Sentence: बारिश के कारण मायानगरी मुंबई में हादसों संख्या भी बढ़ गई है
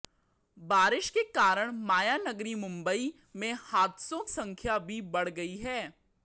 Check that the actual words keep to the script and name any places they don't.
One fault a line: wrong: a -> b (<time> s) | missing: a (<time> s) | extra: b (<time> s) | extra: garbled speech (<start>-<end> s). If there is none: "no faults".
no faults